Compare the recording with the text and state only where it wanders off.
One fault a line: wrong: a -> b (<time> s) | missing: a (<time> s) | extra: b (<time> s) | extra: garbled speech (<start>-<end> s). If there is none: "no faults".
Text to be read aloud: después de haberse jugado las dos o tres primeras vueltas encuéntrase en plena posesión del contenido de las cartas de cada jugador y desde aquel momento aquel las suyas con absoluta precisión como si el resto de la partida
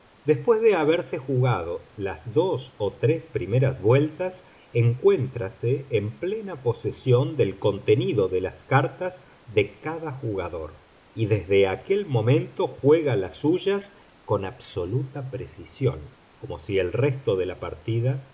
wrong: aquel -> juega (12.7 s)